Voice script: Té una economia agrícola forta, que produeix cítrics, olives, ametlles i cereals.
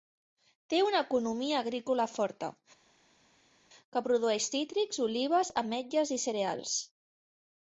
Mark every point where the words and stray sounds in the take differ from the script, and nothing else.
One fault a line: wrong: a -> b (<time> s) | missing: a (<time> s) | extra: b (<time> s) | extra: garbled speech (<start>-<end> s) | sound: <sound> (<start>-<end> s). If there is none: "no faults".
no faults